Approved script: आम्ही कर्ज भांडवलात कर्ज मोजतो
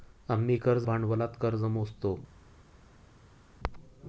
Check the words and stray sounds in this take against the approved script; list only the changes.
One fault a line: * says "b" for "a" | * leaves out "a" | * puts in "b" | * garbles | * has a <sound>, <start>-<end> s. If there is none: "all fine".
all fine